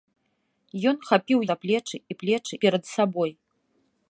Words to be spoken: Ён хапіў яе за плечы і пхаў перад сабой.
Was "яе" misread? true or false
true